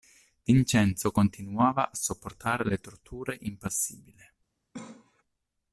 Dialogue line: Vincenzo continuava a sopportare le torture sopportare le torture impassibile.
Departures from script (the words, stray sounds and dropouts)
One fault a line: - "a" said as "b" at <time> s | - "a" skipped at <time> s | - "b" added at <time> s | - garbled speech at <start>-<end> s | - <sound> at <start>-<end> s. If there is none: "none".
- "sopportare le torture" skipped at 3.4 s
- cough at 4.7-5.2 s